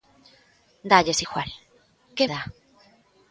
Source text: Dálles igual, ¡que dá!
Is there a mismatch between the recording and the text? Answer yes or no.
no